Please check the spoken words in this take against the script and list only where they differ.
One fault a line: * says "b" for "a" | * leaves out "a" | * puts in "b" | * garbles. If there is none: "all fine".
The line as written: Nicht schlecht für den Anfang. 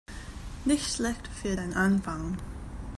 all fine